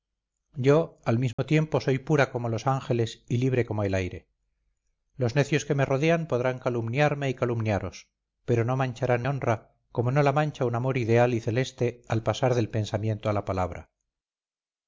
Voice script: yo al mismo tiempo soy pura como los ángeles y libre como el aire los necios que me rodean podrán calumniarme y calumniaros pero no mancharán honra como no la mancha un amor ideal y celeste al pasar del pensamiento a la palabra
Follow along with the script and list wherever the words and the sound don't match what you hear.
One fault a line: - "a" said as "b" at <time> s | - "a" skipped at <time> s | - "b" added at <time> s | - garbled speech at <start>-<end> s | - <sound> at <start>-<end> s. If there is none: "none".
- dropout at 1.3-1.4 s